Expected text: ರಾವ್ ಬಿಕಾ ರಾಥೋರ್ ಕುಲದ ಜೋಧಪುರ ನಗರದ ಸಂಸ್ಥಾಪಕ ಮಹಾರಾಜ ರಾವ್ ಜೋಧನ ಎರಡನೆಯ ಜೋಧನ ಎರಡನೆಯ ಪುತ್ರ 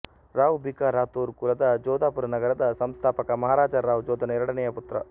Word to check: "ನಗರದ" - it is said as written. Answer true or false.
true